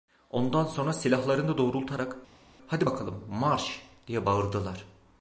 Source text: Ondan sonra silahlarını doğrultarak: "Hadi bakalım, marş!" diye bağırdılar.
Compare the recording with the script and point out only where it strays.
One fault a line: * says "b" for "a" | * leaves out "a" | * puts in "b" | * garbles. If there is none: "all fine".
all fine